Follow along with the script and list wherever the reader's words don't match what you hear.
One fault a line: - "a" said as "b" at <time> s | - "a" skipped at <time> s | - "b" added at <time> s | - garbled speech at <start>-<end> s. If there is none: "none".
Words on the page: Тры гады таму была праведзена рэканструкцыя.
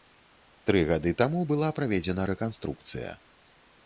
none